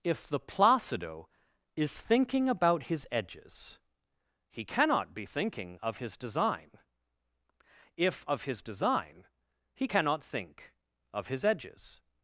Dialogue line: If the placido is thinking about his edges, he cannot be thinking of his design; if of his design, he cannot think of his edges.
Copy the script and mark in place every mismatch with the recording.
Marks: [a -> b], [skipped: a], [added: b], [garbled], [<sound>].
If the placido is thinking about his edges, he cannot be thinking of his design; if of his design, he cannot think of his edges.